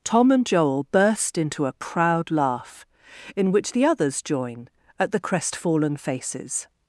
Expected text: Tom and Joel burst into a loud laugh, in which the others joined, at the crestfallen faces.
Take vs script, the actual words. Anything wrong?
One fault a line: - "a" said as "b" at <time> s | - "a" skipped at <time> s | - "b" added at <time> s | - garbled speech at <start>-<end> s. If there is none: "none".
- "loud" said as "proud" at 1.7 s
- "joined" said as "join" at 4.2 s